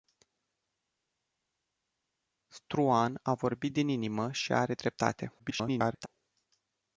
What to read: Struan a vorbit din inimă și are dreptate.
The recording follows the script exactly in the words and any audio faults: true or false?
false